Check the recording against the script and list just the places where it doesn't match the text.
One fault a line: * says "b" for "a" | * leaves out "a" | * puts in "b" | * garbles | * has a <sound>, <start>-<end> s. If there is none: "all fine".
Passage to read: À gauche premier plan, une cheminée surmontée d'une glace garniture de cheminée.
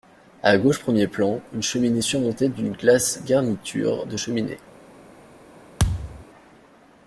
* has a thud, 5.8-6.3 s